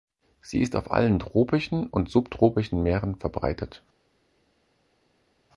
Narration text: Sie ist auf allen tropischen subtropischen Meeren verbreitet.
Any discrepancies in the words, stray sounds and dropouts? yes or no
yes